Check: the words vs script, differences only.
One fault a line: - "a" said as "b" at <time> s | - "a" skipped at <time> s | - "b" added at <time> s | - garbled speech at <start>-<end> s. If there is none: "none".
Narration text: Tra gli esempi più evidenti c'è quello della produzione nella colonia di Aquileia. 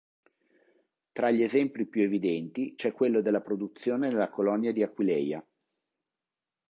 none